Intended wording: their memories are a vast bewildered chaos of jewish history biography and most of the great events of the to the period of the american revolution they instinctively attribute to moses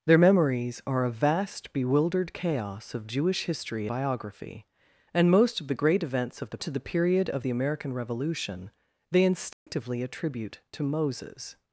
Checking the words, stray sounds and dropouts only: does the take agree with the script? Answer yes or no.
no